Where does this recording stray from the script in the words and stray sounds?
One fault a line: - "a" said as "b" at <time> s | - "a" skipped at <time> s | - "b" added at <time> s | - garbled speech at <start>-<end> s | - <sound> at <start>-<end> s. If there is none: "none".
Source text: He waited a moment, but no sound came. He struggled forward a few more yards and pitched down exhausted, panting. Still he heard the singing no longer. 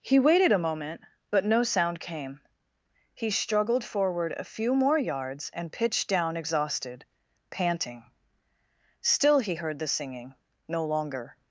none